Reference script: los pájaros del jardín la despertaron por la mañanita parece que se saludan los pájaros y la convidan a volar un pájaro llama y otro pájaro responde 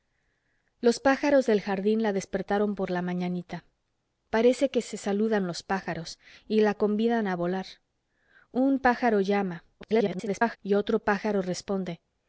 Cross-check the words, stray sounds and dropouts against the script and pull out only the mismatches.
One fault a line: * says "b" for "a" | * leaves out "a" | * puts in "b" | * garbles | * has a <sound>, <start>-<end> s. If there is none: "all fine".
* garbles